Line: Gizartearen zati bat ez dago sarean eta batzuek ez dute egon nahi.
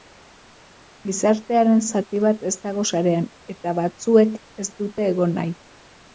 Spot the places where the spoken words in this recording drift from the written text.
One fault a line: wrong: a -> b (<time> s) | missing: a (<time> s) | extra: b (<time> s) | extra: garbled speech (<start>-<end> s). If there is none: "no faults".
no faults